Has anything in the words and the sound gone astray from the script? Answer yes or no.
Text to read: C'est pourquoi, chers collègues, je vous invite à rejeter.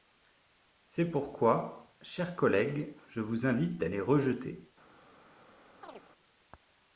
yes